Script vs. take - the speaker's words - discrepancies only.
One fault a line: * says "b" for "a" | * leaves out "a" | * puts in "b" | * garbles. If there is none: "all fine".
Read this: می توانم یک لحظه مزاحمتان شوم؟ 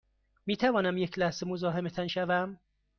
all fine